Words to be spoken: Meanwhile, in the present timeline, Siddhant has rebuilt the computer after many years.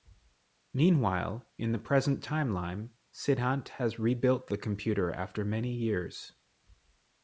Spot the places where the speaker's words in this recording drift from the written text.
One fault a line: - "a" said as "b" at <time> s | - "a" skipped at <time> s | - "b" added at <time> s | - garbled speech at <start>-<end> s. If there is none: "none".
none